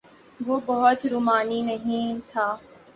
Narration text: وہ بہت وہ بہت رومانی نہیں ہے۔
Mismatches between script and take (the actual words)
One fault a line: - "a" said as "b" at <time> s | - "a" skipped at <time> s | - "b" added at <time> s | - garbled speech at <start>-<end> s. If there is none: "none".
- "وہ بہت" skipped at 1.1 s
- "ہے" said as "تھا" at 2.3 s